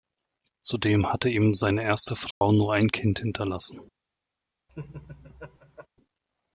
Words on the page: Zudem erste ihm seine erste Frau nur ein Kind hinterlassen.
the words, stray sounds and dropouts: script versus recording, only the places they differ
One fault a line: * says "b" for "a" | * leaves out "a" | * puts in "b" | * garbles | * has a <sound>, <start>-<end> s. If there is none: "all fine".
* says "hatte" for "erste"
* has a dropout, 2.3-2.4 s
* has a laugh, 4.7-5.9 s